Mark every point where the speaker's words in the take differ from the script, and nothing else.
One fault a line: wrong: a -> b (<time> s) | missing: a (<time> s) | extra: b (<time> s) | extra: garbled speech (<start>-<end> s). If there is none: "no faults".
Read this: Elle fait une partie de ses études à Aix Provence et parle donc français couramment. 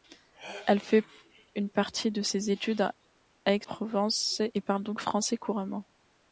no faults